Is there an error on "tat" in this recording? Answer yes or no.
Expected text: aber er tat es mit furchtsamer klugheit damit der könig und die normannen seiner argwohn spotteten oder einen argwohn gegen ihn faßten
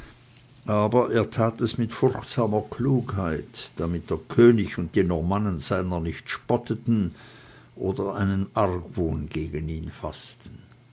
no